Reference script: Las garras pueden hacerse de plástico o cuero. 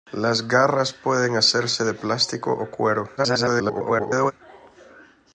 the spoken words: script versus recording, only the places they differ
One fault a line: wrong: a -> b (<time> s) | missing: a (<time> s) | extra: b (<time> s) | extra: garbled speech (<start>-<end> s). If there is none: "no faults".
extra: garbled speech (3.2-4.3 s)